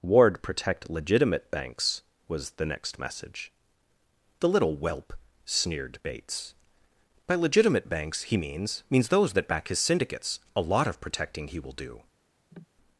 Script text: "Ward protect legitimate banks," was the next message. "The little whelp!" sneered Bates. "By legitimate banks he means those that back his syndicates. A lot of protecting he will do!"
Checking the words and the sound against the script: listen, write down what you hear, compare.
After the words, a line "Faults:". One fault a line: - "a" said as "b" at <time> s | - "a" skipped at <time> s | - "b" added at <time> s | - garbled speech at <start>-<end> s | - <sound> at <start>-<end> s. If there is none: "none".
"Ward protect legitimate banks," was the next message. "The little whelp!" sneered Bates. "By legitimate banks he means means those that back his syndicates. A lot of protecting he will do!"
Faults:
- "means" added at 8.9 s
- cough at 12.5-12.7 s